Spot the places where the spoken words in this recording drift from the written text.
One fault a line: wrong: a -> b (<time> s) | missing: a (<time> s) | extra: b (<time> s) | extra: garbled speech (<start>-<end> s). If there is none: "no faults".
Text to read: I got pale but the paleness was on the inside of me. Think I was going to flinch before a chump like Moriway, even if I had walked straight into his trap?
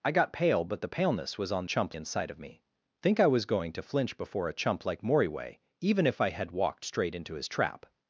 wrong: the -> chump (1.6 s)